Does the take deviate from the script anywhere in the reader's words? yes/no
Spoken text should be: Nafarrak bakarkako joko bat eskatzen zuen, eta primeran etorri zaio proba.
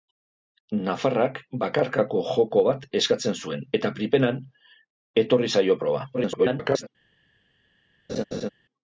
yes